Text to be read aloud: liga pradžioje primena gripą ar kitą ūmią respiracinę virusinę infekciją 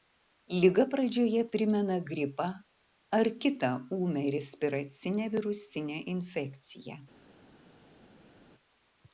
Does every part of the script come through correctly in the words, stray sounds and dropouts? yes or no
yes